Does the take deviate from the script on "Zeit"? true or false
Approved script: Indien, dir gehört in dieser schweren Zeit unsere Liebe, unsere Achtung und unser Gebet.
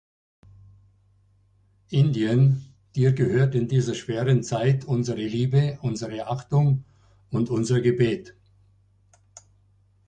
false